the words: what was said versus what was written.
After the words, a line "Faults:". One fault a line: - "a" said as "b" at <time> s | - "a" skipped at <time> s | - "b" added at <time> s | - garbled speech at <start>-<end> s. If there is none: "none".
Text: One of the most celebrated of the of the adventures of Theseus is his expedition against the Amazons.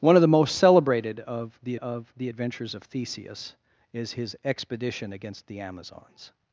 One of the most celebrated of the of the adventures of Theseus is his expedition against the Amazons.
Faults:
none